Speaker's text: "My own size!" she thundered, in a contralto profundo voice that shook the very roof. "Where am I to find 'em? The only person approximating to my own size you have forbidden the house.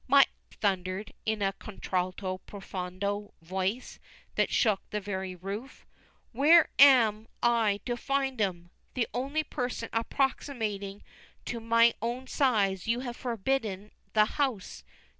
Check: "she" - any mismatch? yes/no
yes